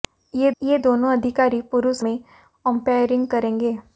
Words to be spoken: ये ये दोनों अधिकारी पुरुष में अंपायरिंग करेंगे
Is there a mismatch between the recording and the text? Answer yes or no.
no